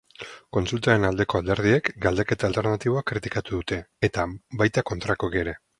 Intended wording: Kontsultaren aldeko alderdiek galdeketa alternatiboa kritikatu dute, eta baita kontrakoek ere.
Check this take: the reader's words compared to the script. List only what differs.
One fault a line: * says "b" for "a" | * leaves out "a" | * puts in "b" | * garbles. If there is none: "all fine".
all fine